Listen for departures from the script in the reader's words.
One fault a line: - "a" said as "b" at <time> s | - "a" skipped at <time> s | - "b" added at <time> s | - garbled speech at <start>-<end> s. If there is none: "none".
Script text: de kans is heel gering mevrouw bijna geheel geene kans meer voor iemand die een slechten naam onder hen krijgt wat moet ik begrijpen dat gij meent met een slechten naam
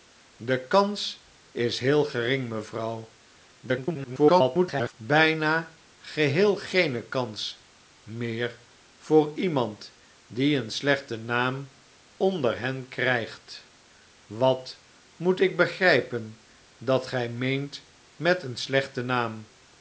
- garbled speech at 3.6-4.9 s